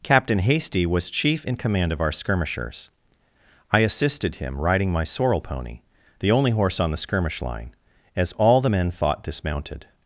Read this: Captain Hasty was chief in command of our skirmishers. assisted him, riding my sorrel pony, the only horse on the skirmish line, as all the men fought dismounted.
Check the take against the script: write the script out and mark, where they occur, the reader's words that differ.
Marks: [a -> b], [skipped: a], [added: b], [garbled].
Captain Hasty was chief in command of our skirmishers. [added: I] assisted him, riding my sorrel pony, the only horse on the skirmish line, as all the men fought dismounted.